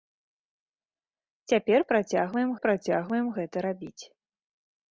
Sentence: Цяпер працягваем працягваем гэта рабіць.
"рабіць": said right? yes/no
yes